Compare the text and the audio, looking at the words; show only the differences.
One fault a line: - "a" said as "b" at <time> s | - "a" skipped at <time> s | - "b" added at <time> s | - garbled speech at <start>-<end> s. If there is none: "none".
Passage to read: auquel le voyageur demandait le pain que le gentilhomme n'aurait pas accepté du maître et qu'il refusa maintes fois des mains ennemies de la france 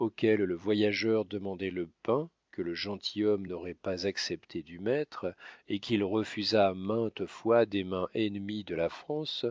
none